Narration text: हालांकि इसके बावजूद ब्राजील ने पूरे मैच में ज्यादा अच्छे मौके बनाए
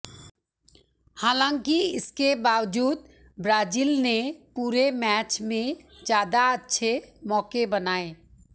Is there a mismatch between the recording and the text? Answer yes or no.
no